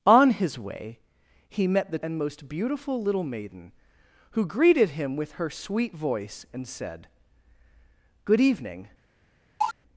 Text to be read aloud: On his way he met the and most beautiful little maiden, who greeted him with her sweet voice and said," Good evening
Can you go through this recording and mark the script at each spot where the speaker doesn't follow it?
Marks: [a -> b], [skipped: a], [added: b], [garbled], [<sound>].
On his way he met the and most beautiful little maiden, who greeted him with her sweet voice and said," Good evening [cough]